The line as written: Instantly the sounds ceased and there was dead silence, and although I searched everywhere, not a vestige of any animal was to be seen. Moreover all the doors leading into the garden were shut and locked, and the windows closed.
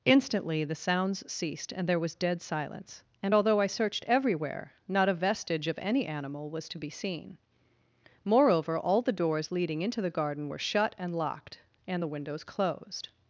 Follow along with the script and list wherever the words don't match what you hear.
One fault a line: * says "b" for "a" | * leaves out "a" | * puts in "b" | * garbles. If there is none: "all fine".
all fine